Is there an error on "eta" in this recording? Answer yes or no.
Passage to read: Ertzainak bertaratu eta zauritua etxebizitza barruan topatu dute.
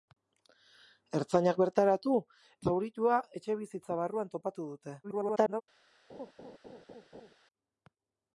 yes